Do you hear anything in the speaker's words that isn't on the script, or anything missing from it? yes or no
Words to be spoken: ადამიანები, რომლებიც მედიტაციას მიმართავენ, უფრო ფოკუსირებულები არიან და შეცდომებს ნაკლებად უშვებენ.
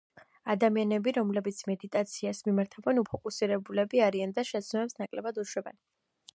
yes